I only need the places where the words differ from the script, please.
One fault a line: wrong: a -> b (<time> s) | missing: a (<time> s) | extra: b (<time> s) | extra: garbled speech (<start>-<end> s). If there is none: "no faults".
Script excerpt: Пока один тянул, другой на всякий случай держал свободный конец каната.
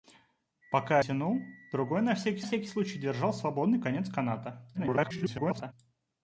missing: один (1.0 s)
extra: всякий (2.4 s)
extra: garbled speech (4.7-5.7 s)